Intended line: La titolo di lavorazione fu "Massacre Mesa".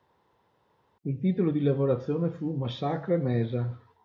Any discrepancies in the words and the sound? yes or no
yes